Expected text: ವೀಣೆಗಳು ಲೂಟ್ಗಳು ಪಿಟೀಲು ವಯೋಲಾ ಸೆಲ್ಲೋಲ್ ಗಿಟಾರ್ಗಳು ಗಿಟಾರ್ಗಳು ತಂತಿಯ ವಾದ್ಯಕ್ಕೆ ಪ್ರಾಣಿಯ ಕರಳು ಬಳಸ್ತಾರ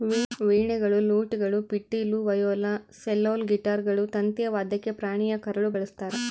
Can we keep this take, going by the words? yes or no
no